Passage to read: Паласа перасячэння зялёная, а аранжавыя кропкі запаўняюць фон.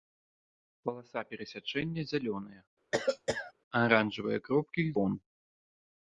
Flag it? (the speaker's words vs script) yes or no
yes